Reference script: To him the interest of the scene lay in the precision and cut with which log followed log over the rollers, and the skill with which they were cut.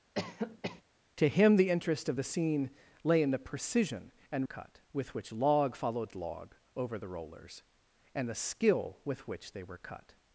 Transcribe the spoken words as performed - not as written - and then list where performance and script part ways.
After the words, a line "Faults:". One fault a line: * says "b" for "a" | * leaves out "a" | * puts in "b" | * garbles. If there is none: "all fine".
To him the interest of the scene lay in the precision and cut with which log followed log over the rollers, and the skill with which they were cut.
Faults:
all fine